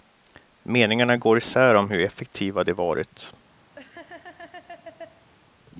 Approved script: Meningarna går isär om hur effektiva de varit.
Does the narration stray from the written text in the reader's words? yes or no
no